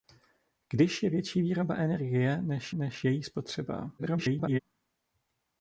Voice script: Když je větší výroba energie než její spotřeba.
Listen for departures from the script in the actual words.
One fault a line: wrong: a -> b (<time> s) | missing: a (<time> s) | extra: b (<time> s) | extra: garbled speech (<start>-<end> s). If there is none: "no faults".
extra: než (2.7 s)
extra: garbled speech (4.0-4.6 s)